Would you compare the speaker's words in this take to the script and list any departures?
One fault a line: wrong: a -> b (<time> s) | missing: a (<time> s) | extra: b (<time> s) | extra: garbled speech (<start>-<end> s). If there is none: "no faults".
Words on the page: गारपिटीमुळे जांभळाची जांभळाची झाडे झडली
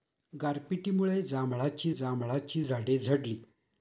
no faults